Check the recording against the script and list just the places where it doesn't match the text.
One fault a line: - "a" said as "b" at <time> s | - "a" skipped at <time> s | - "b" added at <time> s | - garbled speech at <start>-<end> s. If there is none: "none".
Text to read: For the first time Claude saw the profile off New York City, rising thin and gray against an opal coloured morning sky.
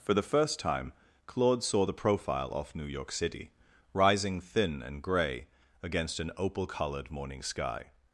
none